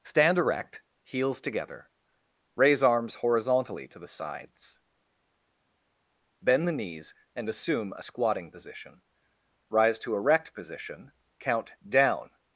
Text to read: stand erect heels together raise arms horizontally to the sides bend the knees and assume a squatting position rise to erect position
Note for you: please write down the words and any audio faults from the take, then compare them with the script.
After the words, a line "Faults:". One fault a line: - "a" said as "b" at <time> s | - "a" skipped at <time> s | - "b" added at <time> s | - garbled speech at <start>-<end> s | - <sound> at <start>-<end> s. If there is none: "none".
stand erect heels together raise arms horizontally to the sides bend the knees and assume a squatting position rise to erect position count down
Faults:
- "count down" added at 11.4 s